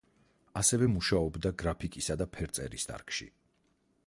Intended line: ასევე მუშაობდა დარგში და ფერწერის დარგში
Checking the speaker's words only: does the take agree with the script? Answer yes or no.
no